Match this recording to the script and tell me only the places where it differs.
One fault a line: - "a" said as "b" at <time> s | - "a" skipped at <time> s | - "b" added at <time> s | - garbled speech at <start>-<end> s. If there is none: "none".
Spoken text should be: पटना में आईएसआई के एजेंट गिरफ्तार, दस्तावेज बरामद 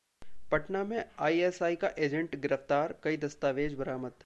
- "के" said as "का" at 1.8 s
- "कई" added at 3.0 s